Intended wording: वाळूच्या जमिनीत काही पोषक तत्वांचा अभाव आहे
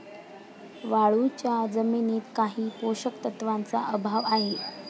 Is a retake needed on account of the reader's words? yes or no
no